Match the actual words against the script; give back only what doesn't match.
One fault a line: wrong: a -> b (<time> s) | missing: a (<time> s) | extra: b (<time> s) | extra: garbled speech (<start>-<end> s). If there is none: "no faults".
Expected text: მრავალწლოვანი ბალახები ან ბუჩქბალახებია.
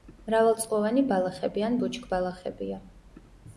no faults